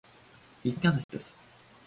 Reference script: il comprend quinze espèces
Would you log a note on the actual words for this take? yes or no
yes